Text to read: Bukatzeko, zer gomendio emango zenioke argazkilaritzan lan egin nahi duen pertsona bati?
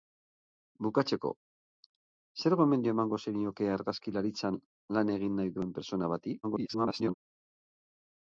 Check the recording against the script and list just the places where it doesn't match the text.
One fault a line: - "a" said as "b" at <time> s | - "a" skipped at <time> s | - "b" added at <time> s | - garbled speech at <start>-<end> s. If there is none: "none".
- garbled speech at 6.4-7.1 s